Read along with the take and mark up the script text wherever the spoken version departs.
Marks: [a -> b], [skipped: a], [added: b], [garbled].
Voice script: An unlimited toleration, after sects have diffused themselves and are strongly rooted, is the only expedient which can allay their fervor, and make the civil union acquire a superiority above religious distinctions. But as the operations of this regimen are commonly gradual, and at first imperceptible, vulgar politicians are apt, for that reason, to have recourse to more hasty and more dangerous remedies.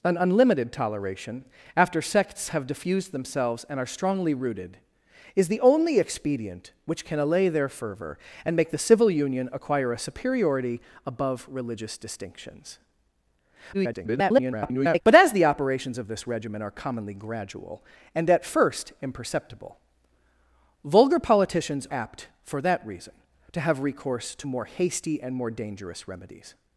An unlimited toleration, after sects have diffused themselves and are strongly rooted, is the only expedient which can allay their fervor, and make the civil union acquire a superiority above religious distinctions. [garbled] But as the operations of this regimen are commonly gradual, and at first imperceptible, vulgar politicians [skipped: are] apt, for that reason, to have recourse to more hasty and more dangerous remedies.